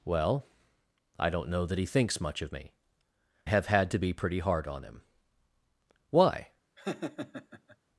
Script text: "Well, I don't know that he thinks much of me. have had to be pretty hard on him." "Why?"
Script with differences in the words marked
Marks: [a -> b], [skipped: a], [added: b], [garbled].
"Well, I don't know that he thinks much of me. have had to be pretty hard on him." "Why?"